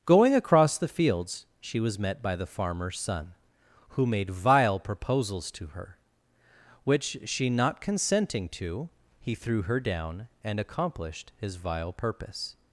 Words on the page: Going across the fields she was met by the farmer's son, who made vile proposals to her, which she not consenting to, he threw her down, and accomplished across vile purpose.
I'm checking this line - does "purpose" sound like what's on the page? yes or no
yes